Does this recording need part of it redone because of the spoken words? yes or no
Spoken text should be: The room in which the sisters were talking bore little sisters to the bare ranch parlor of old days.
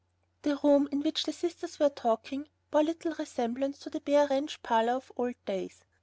yes